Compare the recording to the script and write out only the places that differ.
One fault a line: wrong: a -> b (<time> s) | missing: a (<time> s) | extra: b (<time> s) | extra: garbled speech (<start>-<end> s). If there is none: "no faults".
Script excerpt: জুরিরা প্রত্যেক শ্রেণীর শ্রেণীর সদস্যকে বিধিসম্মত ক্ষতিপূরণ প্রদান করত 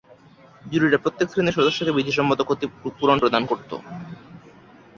missing: শ্রেণীর (1.6 s)